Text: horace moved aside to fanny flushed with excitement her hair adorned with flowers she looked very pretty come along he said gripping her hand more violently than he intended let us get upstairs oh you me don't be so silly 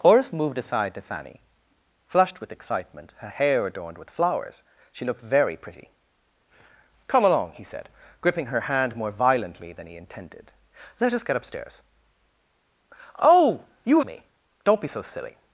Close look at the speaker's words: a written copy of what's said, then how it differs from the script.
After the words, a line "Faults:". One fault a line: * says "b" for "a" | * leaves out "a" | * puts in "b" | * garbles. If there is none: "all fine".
horace moved aside to fanny flushed with excitement her hair adorned with flowers she looked very pretty come along he said gripping her hand more violently than he intended let us get upstairs oh you me don't be so silly
Faults:
all fine